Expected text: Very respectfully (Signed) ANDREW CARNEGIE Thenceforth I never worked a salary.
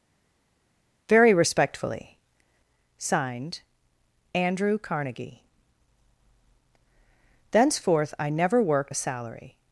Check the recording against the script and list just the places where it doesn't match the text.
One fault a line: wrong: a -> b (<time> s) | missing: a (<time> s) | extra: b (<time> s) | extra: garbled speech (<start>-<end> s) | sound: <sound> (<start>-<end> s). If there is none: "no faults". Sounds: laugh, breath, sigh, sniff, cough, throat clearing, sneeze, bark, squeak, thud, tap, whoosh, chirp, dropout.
no faults